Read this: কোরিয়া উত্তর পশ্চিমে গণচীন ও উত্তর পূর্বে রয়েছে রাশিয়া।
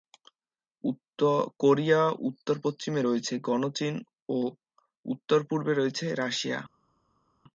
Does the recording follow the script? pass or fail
fail